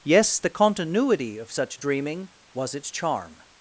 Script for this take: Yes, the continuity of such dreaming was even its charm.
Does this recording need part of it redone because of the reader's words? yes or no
yes